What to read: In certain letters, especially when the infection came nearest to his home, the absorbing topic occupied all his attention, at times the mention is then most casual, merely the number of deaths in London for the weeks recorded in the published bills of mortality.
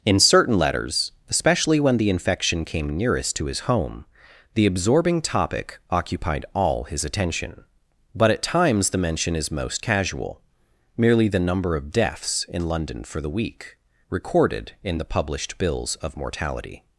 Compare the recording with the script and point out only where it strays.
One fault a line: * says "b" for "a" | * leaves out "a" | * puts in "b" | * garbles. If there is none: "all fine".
* puts in "but"
* leaves out "then"
* says "week" for "weeks"